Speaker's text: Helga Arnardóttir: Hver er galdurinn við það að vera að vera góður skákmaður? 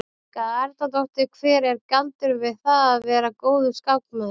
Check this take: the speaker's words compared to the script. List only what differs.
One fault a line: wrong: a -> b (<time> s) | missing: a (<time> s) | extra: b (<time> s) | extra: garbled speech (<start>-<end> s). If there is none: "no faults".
missing: að vera (3.4 s)